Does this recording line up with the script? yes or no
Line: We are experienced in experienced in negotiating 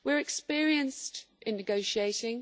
no